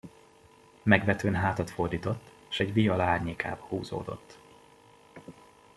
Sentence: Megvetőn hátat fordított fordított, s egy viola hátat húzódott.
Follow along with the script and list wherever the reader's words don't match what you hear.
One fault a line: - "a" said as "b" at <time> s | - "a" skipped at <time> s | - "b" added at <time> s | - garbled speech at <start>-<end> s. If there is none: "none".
- "fordított" skipped at 2.3 s
- "hátat" said as "árnyékába" at 3.0 s